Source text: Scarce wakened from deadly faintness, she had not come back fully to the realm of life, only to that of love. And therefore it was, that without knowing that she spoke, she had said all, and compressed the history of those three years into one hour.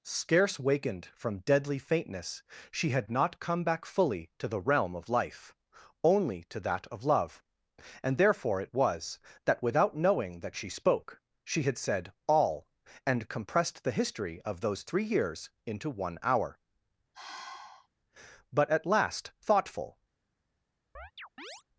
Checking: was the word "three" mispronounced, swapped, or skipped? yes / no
no